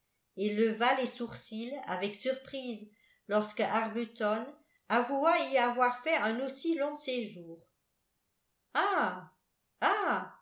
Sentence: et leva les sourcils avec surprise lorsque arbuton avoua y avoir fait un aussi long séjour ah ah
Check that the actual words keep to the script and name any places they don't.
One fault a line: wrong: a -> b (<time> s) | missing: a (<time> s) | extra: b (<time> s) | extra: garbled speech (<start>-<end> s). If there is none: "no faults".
no faults